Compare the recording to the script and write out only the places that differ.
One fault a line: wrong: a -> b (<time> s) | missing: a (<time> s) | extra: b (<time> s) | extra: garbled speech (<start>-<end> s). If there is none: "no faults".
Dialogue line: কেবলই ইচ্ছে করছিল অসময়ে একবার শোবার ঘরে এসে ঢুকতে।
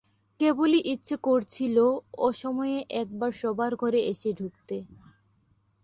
no faults